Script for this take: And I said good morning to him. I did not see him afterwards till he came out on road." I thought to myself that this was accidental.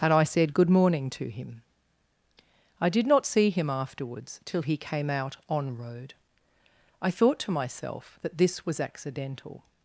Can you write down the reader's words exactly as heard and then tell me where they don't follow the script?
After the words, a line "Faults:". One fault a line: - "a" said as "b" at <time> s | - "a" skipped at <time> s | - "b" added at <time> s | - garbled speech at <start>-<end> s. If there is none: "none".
And I said good morning to him. I did not see him afterwards till he came out on road." I thought to myself that this was accidental.
Faults:
none